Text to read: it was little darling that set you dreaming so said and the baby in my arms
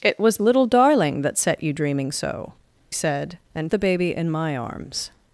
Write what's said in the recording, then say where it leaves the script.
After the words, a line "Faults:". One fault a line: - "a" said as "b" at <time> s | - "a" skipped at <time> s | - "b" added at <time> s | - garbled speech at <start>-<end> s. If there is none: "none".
it was little darling that set you dreaming so said and the baby in my arms
Faults:
none